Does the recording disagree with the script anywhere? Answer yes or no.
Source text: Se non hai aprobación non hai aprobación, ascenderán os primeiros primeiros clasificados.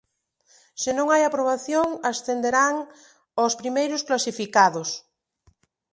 yes